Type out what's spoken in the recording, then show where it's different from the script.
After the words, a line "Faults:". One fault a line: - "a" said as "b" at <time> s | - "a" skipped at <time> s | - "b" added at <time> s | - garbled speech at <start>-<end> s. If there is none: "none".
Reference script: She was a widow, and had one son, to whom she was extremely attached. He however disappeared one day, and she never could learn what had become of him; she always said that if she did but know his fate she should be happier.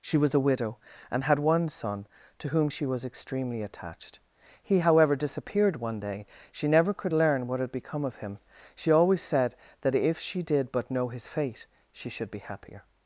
She was a widow, and had one son, to whom she was extremely attached. He however disappeared one day, she never could learn what had become of him; she always said that if she did but know his fate she should be happier.
Faults:
- "and" skipped at 6.2 s